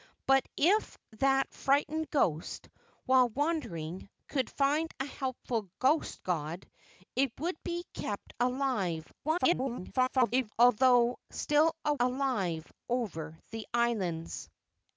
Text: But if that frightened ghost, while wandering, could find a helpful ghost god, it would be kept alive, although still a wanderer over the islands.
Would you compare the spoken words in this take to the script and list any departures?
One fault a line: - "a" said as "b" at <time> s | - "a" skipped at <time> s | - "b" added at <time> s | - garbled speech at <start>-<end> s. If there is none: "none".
- garbled speech at 9.2-10.5 s
- "wanderer" said as "alive" at 12.0 s